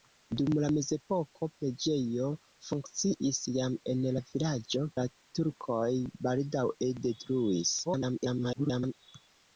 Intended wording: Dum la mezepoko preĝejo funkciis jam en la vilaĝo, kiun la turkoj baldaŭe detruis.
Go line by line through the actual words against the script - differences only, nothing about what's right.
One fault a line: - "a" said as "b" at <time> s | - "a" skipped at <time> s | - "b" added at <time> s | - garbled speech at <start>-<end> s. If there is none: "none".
- "kiun" skipped at 4.9 s
- garbled speech at 7.8-8.9 s